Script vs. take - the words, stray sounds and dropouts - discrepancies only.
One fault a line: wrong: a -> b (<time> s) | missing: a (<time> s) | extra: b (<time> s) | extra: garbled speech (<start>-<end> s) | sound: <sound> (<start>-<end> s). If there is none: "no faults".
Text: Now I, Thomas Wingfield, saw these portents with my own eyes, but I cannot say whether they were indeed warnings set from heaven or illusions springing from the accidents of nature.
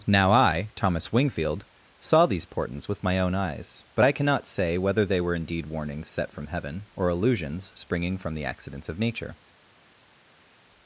no faults